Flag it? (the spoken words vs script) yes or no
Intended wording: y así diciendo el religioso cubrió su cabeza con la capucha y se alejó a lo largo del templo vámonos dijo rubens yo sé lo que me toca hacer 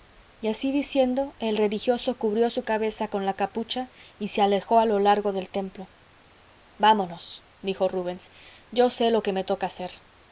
no